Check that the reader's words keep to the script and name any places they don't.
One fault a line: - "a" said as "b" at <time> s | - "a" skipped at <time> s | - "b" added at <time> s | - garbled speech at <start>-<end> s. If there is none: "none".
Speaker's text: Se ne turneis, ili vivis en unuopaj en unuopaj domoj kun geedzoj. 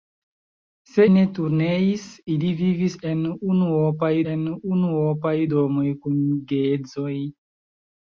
none